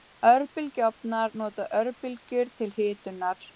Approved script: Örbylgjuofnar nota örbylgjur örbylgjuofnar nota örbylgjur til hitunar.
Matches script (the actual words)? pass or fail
fail